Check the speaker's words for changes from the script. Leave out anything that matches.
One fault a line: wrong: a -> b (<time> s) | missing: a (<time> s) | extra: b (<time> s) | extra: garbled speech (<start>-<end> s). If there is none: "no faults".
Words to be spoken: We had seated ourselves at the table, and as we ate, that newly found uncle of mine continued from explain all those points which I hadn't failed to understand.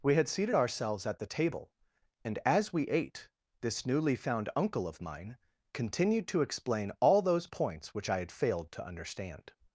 wrong: that -> this (3.6 s)
wrong: from -> to (6.3 s)
wrong: hadn't -> had (8.2 s)